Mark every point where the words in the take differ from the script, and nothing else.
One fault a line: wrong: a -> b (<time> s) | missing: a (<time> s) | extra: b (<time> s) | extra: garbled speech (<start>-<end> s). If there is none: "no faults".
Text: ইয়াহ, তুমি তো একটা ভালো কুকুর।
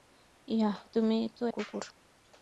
missing: একটা ভালো (1.4 s)